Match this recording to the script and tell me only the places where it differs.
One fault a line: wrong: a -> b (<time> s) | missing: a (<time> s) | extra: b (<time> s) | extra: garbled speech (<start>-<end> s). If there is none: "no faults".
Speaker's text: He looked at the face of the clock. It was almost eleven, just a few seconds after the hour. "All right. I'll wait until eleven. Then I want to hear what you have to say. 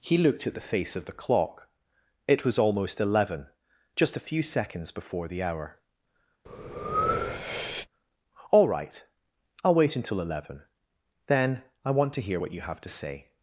wrong: after -> before (4.9 s)